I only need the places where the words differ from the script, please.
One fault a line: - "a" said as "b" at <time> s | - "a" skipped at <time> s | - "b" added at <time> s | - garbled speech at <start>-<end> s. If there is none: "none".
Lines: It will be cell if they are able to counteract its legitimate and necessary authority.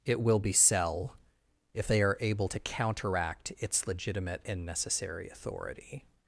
none